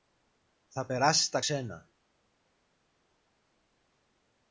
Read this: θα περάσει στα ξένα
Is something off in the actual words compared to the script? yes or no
no